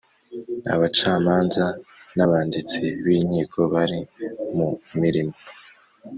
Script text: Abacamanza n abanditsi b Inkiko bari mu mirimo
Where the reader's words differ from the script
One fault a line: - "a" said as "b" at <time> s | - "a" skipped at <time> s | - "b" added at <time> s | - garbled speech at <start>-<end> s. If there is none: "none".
none